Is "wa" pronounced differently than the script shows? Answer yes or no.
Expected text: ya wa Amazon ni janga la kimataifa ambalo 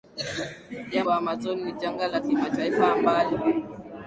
no